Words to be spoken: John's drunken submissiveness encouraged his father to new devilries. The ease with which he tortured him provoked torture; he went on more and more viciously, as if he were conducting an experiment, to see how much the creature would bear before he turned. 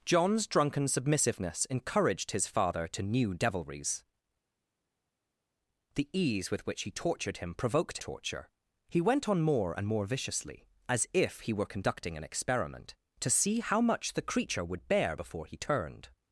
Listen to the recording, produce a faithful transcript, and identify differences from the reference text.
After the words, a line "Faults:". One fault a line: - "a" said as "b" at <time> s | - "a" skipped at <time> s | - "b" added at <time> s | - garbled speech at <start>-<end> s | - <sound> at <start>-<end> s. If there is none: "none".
John's drunken submissiveness encouraged his father to new devilries. The ease with which he tortured him provoked torture; he went on more and more viciously, as if he were conducting an experiment, to see how much the creature would bear before he turned.
Faults:
none